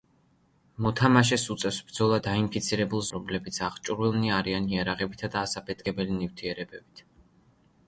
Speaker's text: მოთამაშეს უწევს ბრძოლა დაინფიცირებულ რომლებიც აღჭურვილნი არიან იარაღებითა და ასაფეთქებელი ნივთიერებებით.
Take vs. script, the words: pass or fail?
pass